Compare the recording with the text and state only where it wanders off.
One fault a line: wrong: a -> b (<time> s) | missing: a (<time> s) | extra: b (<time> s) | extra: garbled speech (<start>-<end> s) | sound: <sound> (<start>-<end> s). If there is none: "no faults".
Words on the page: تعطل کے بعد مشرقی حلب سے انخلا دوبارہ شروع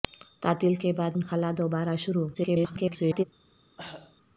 missing: مشرقی حلب سے (1.2 s)
extra: garbled speech (2.3-3.2 s)
sound: cough (3.8-4.2 s)